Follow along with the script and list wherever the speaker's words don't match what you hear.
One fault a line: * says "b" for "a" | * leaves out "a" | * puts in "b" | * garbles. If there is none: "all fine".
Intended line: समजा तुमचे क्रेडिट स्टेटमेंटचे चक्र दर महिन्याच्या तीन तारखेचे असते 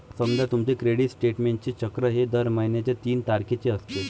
* puts in "हे"